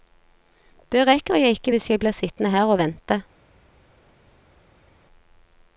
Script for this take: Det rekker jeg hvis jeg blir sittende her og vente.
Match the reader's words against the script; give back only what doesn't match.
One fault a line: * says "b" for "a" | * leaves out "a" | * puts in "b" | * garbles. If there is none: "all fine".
* puts in "ikke"